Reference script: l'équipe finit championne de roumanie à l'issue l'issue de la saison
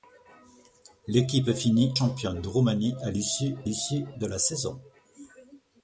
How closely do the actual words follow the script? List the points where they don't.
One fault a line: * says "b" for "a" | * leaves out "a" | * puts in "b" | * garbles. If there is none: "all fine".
all fine